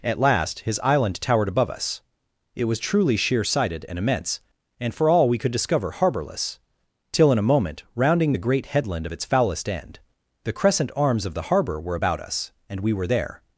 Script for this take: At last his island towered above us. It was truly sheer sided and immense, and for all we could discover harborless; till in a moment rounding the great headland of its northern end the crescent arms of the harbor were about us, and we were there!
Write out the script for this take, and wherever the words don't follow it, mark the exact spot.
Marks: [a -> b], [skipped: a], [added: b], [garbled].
At last his island towered above us. It was truly sheer sided and immense, and for all we could discover harborless; till in a moment rounding the great headland of its [northern -> foulest] end the crescent arms of the harbor were about us, and we were there!